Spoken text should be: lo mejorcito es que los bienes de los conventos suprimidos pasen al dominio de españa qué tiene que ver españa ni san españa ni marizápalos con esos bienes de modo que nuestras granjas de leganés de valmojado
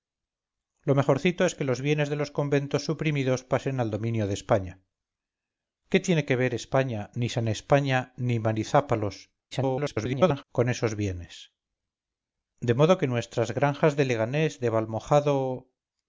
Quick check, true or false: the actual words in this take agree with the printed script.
false